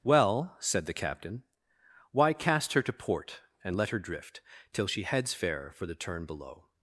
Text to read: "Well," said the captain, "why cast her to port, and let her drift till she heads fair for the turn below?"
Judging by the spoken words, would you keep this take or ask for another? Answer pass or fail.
pass